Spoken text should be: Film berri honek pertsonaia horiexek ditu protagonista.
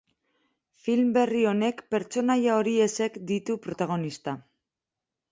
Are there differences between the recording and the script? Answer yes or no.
no